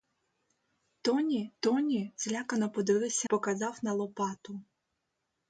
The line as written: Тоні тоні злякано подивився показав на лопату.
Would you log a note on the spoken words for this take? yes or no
no